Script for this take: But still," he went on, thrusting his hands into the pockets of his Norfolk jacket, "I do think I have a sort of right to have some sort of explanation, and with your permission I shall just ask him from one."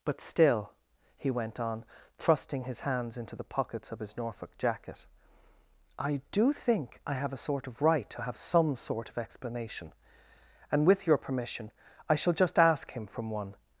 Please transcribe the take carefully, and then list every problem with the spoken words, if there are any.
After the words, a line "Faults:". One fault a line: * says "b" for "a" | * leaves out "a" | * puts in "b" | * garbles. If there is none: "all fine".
But still," he went on, thrusting his hands into the pockets of his Norfolk jacket, "I do think I have a sort of right to have some sort of explanation, and with your permission I shall just ask him from one."
Faults:
all fine